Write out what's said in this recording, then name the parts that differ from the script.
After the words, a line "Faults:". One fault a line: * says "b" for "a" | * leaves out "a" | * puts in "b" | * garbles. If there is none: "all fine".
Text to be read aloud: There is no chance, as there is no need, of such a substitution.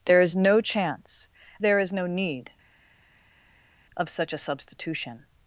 There is no chance, there is no need, of such a substitution.
Faults:
* leaves out "as"